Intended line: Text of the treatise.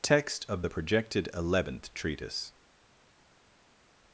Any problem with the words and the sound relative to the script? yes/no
yes